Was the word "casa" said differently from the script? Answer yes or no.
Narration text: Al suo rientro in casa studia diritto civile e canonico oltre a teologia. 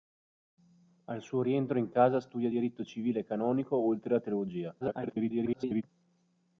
no